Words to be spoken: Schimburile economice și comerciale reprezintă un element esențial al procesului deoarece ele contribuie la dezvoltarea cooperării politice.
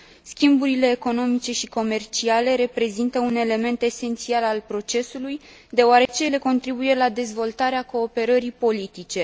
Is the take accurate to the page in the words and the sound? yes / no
no